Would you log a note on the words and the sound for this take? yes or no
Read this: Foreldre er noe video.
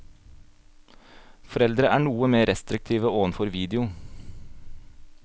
yes